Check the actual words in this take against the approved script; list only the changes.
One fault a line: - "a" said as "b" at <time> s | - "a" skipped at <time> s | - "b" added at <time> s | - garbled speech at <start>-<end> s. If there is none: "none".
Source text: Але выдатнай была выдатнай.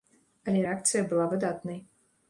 - "выдатнай" said as "рэакцыя" at 0.6 s